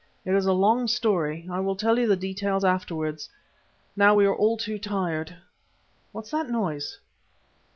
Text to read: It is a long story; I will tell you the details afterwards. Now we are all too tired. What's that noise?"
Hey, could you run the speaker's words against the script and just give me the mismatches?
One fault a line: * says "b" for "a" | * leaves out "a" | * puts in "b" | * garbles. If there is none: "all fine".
all fine